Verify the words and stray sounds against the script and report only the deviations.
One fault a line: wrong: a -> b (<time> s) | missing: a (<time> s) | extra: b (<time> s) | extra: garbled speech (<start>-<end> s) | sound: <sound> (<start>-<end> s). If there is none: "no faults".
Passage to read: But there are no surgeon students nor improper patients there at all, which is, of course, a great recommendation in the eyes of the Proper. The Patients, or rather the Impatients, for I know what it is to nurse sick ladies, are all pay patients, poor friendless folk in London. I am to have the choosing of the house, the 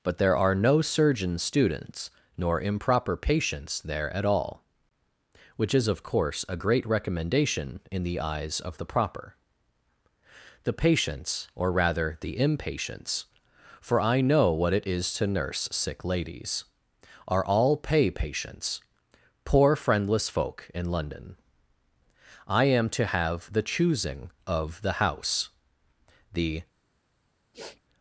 sound: sniff (27.5-27.8 s)